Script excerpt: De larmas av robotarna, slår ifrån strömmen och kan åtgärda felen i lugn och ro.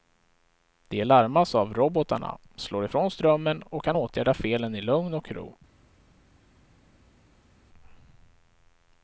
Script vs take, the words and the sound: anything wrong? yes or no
no